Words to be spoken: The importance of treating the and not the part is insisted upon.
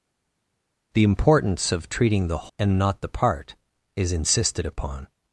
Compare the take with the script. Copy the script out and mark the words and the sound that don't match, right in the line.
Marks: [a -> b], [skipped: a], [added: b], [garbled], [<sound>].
The importance of treating the and not the part is insisted upon.